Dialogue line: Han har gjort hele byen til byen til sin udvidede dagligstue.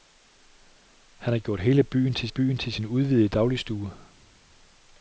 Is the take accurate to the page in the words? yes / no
yes